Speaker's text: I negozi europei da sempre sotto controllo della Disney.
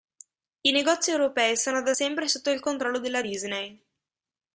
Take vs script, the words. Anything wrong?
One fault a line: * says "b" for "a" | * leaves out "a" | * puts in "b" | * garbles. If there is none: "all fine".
* puts in "sono"
* puts in "il"